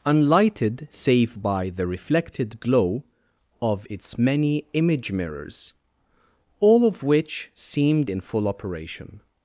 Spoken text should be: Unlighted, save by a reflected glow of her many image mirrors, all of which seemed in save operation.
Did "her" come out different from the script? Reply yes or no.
yes